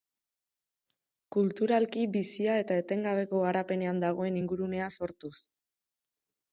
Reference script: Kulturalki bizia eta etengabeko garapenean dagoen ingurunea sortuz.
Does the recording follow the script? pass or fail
pass